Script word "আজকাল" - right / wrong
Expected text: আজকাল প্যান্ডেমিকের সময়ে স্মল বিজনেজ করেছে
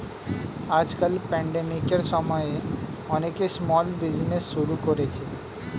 right